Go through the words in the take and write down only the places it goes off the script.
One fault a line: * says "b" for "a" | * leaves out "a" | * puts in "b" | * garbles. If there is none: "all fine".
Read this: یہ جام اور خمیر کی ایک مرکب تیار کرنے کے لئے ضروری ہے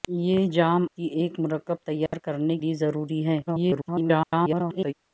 * leaves out "اور خمیر"
* leaves out "کے"
* garbles